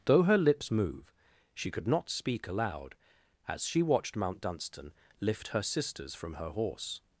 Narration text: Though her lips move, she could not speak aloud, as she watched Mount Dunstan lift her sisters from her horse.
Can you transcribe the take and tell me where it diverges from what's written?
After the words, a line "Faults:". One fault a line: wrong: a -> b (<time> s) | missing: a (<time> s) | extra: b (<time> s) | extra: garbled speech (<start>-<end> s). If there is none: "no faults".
Though her lips move, she could not speak aloud, as she watched Mount Dunstan lift her sisters from her horse.
Faults:
no faults